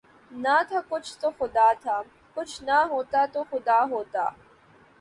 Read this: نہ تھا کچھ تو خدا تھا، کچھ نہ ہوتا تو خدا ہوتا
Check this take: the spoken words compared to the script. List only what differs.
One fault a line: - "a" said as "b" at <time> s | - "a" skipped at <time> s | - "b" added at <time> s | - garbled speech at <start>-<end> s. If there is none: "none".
none